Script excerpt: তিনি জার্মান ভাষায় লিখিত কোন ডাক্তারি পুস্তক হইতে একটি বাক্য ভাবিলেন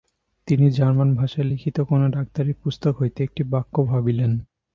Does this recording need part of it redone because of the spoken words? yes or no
no